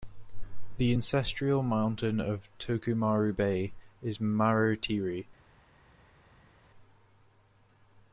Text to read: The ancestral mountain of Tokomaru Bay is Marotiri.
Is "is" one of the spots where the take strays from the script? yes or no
no